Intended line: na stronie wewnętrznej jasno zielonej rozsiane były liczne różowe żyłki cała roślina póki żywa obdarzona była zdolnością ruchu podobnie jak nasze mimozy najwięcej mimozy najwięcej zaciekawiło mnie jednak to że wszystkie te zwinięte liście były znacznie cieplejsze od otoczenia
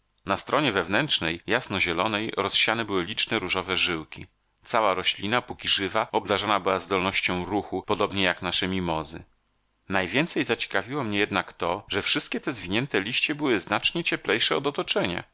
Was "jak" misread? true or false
false